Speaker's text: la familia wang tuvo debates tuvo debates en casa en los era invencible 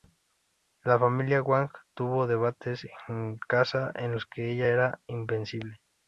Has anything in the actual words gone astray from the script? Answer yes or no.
yes